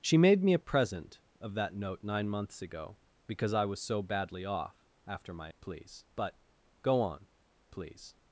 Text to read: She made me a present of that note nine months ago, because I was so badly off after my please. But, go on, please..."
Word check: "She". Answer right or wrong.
right